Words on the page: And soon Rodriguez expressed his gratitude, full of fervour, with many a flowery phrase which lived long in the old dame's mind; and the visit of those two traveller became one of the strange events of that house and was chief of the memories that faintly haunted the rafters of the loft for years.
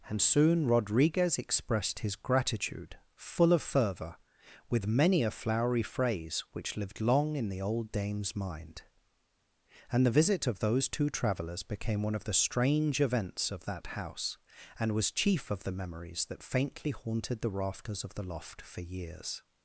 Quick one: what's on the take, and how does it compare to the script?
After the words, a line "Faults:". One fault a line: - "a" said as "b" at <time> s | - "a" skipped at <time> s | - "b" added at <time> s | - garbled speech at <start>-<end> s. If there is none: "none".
And soon Rodriguez expressed his gratitude, full of fervour, with many a flowery phrase which lived long in the old dame's mind; and the visit of those two travellers became one of the strange events of that house and was chief of the memories that faintly haunted the rafters of the loft for years.
Faults:
- "traveller" said as "travellers" at 11.1 s